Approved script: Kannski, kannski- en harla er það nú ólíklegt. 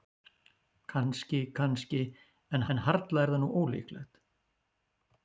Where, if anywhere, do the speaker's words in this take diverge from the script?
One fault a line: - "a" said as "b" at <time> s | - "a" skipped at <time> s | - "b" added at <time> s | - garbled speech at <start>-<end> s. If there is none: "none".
- "en" added at 2.7 s